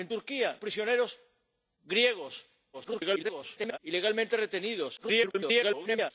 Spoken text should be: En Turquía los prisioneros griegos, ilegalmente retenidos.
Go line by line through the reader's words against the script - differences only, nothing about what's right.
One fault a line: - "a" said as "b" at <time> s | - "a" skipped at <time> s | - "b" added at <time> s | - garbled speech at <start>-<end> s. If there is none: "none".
- "los" skipped at 0.6 s
- garbled speech at 2.7-3.8 s
- garbled speech at 5.0-6.1 s